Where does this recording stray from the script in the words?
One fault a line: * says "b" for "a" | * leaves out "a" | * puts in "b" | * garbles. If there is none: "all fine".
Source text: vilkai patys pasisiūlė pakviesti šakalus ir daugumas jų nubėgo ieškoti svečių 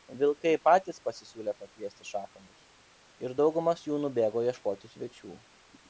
all fine